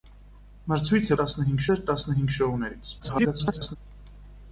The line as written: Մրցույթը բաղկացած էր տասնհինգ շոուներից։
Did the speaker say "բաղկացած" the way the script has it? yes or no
no